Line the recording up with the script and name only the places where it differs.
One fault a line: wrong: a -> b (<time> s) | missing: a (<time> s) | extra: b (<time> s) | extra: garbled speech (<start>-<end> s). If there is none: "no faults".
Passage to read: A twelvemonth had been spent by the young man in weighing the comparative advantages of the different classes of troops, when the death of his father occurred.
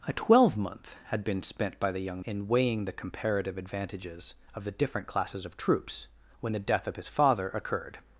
missing: man (2.2 s)